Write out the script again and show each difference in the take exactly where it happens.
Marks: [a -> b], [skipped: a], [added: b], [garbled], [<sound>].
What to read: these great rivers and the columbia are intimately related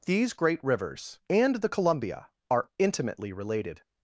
these great rivers and the columbia are intimately related